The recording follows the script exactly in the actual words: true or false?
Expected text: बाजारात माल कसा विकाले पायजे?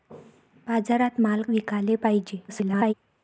false